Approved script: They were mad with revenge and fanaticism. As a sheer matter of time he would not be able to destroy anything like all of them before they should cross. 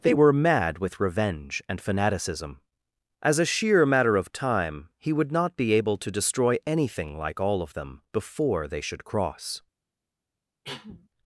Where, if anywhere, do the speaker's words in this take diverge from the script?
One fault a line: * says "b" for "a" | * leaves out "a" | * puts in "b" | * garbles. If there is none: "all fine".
all fine